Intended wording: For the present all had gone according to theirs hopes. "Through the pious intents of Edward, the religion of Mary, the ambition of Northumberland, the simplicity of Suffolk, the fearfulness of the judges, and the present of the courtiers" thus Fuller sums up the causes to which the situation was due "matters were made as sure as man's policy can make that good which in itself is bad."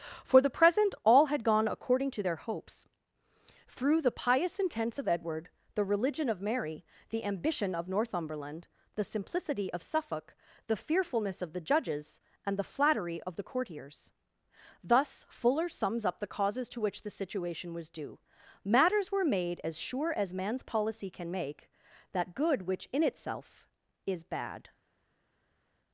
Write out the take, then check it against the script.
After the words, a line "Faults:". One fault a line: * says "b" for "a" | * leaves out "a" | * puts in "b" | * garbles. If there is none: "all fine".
For the present all had gone according to their hopes. "Through the pious intents of Edward, the religion of Mary, the ambition of Northumberland, the simplicity of Suffolk, the fearfulness of the judges, and the flattery of the courtiers" thus Fuller sums up the causes to which the situation was due "matters were made as sure as man's policy can make that good which in itself is bad."
Faults:
* says "their" for "theirs"
* says "flattery" for "present"